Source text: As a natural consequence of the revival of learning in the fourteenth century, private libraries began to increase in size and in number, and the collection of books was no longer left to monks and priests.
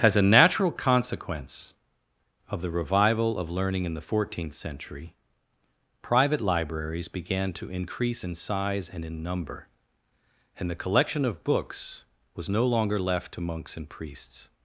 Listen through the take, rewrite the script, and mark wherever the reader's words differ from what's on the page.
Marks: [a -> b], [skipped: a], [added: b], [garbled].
As a natural consequence of the revival of learning in the fourteenth century, private libraries began to increase in size and in number, and the collection of books was no longer left to monks and priests.